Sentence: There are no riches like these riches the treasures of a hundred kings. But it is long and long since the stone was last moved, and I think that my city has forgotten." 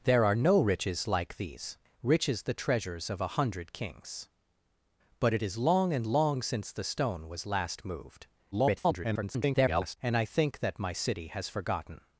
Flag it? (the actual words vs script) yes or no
yes